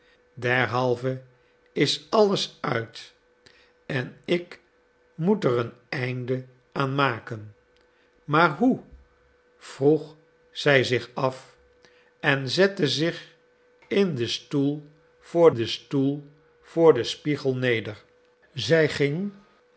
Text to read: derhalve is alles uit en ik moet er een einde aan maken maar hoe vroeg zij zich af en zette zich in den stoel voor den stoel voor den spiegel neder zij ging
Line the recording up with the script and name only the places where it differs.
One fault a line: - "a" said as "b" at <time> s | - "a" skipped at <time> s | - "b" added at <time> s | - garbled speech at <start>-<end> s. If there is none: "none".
none